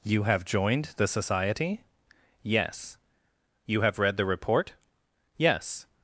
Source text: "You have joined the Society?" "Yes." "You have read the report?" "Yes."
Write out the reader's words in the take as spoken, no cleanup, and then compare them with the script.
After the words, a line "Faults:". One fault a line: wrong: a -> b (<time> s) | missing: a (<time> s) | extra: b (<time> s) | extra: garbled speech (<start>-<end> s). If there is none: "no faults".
"You have joined the Society?" "Yes." "You have read the report?" "Yes."
Faults:
no faults